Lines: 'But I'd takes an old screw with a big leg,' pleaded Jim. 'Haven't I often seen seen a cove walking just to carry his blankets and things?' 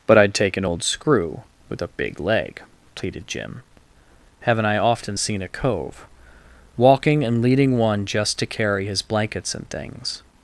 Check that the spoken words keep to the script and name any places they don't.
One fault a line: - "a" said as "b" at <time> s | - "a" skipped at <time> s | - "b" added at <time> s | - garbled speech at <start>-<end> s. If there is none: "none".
- "takes" said as "take" at 0.3 s
- "seen" skipped at 5.4 s
- "and leading one" added at 7.2 s